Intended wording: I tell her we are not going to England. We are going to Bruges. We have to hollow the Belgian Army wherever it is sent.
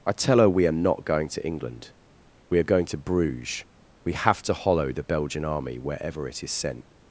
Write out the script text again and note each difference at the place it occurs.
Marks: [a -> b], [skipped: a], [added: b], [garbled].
I tell her we are not going to England. We are going to Bruges. We have to hollow the Belgian Army wherever it is sent.